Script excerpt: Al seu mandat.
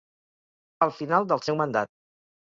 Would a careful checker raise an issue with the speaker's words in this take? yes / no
yes